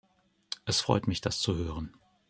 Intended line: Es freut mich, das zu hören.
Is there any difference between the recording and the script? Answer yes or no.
no